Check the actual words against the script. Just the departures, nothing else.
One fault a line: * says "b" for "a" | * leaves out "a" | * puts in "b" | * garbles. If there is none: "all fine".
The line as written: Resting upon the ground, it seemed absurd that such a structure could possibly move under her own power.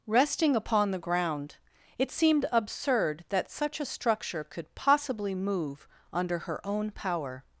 all fine